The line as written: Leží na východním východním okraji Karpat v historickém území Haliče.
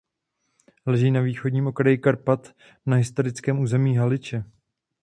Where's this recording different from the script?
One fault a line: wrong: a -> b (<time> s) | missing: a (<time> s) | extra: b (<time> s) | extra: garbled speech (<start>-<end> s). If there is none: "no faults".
missing: východním (1.7 s)
wrong: v -> na (2.9 s)